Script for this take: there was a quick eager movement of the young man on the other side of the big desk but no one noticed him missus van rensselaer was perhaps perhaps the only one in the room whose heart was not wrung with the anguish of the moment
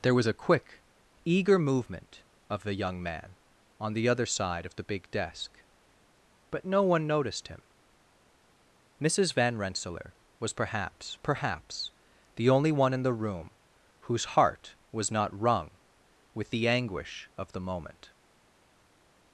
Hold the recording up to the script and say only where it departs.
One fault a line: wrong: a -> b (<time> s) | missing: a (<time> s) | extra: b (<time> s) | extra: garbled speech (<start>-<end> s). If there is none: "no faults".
no faults